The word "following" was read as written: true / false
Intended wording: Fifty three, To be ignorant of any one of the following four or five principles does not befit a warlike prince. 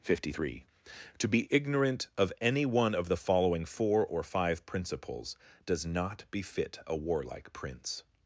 true